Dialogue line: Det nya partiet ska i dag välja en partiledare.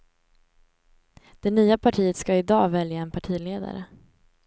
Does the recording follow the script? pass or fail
pass